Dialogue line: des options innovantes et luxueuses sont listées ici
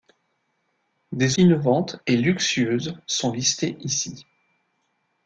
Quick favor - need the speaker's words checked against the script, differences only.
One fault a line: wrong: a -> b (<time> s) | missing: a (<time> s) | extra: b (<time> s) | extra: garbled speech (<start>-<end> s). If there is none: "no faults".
missing: options (1.4 s)